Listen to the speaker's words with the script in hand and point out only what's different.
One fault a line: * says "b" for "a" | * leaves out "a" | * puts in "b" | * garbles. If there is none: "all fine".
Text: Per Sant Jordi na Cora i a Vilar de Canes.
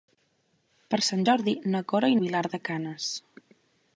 all fine